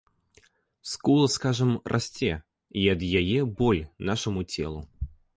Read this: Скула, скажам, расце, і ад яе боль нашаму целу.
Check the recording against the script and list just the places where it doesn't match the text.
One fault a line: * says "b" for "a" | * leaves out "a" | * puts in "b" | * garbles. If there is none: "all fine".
all fine